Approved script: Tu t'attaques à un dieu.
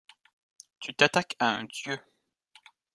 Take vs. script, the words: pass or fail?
pass